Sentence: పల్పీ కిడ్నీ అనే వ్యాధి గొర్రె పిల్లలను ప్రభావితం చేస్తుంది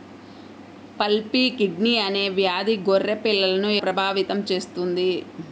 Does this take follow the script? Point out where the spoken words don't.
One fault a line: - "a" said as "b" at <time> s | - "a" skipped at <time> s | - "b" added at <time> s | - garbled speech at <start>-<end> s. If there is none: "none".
none